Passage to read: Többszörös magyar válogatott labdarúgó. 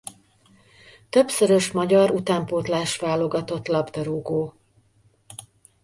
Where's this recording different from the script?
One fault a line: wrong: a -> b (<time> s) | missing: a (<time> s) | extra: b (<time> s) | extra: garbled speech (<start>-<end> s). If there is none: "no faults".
extra: utánpótlás (2.1 s)